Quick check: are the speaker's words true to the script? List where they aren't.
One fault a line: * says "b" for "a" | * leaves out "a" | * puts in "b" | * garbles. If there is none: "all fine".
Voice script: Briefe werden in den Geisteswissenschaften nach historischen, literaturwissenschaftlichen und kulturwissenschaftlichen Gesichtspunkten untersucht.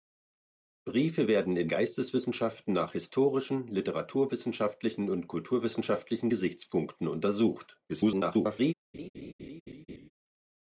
* leaves out "den"
* garbles